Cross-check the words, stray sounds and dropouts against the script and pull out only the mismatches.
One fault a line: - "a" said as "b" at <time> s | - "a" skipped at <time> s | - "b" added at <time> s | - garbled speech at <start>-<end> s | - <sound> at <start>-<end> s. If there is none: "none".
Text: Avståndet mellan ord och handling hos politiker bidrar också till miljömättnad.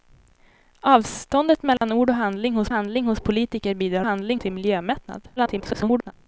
- dropout at 1.8-1.8 s
- "handling hos" added at 2.7 s
- "också" said as "handling" at 4.0 s
- garbled speech at 5.4-6.1 s